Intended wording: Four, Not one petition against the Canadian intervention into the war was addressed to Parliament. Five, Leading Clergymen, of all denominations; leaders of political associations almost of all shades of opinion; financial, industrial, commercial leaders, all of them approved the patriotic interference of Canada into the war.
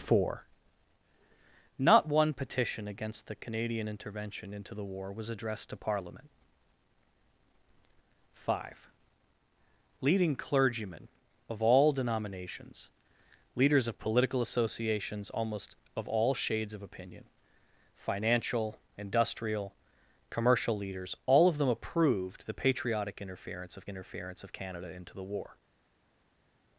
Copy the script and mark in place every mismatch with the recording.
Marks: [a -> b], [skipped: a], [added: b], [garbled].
Four, Not one petition against the Canadian intervention into the war was addressed to Parliament. Five, Leading Clergymen, of all denominations; leaders of political associations almost of all shades of opinion; financial, industrial, commercial leaders, all of them approved the patriotic interference of [added: interference of] Canada into the war.